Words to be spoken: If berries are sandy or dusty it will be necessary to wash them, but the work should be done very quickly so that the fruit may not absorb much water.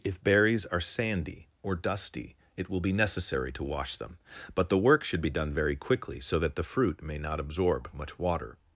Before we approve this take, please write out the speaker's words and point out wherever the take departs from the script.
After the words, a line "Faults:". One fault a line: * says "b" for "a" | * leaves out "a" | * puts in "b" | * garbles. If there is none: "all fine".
If berries are sandy or dusty it will be necessary to wash them, but the work should be done very quickly so that the fruit may not absorb much water.
Faults:
all fine